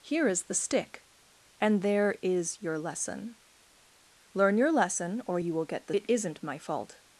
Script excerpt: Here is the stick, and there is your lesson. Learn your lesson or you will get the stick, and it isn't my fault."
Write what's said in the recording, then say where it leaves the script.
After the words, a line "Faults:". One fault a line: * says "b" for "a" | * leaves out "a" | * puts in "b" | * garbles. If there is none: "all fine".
Here is the stick, and there is your lesson. Learn your lesson or you will get the it isn't my fault."
Faults:
* leaves out "stick and"